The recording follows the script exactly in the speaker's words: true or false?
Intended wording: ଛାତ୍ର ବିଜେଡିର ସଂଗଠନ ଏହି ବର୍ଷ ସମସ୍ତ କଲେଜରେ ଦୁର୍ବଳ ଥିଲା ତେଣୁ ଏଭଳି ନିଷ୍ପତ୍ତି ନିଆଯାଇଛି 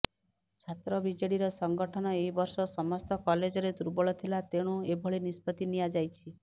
true